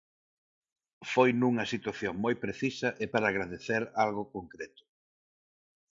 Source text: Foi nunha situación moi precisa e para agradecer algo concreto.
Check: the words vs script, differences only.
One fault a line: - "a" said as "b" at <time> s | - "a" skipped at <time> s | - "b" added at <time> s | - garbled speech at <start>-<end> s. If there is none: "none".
none